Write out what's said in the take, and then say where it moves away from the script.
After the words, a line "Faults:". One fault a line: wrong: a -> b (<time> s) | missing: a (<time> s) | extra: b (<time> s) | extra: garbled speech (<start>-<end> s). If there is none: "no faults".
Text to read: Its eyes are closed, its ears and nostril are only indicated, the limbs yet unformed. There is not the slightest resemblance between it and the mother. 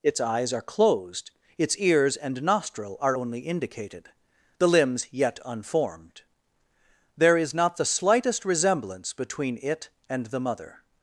Its eyes are closed, its ears and nostril are only indicated, the limbs yet unformed. There is not the slightest resemblance between it and the mother.
Faults:
no faults